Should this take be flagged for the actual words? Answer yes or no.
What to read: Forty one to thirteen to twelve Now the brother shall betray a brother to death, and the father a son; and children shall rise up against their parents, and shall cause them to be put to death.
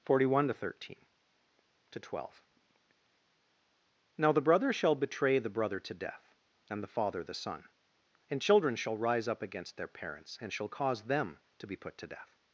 yes